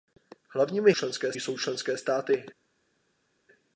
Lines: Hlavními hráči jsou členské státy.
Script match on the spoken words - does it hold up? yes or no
no